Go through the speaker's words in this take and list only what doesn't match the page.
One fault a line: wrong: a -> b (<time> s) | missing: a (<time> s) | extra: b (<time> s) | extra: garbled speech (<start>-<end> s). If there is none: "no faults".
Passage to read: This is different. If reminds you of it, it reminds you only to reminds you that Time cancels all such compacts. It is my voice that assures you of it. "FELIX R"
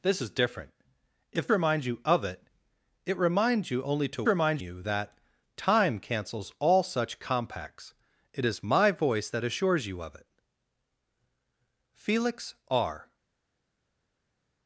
no faults